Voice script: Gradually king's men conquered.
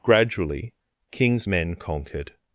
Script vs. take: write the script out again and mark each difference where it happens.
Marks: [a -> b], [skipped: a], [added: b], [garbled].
Gradually king's men conquered.